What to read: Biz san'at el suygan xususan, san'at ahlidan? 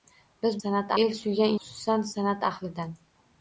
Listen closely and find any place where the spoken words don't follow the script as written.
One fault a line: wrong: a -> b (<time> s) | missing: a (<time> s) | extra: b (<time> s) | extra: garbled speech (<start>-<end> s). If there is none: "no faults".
no faults